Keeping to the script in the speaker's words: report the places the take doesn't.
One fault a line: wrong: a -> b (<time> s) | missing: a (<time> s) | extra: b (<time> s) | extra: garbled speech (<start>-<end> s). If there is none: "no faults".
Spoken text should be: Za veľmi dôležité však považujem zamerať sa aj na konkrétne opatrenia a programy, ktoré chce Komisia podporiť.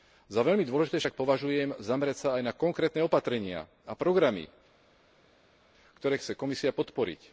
no faults